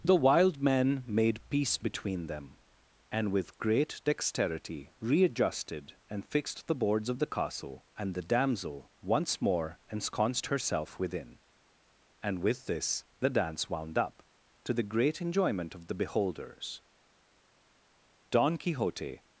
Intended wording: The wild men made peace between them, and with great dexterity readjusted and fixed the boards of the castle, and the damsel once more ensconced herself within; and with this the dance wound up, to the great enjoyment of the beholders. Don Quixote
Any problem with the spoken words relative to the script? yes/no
no